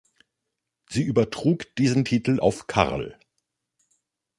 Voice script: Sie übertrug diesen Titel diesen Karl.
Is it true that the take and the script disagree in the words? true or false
true